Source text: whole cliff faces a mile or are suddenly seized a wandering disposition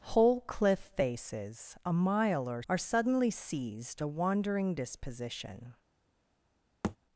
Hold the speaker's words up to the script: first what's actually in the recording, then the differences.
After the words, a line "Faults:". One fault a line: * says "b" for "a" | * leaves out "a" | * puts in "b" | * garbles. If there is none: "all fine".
whole cliff faces a mile or are suddenly seized a wandering disposition
Faults:
all fine